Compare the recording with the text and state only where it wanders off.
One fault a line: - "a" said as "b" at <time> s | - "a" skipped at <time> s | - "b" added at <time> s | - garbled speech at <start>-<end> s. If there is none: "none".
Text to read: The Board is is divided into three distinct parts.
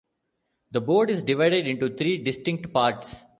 - "is" skipped at 1.2 s